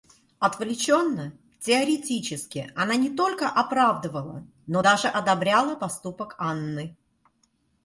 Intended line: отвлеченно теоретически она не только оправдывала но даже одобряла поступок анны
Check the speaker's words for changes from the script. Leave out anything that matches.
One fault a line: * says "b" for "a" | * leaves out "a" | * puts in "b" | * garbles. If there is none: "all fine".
all fine